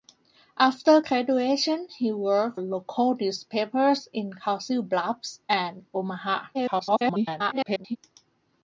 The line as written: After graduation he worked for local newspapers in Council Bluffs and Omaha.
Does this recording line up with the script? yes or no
no